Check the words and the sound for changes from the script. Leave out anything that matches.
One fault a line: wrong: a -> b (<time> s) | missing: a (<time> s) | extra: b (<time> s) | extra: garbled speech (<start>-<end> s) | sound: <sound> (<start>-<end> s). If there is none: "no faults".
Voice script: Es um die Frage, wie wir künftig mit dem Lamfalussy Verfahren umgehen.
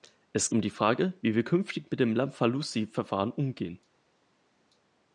no faults